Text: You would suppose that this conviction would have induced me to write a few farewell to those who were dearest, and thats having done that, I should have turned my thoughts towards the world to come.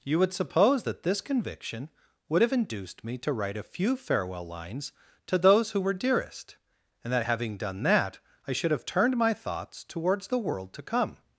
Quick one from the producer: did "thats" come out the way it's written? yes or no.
no